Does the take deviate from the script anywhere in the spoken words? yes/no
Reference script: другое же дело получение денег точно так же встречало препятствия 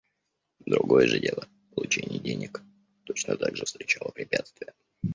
no